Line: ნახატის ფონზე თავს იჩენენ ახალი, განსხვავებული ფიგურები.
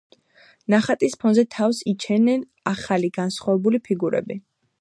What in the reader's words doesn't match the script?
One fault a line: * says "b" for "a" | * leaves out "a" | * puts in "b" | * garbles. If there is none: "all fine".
all fine